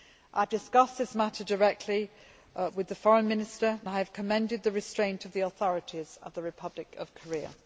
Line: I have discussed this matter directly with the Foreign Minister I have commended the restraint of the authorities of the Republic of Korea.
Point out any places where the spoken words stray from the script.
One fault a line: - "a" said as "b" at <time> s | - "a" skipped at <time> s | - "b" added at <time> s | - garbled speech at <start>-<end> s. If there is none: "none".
none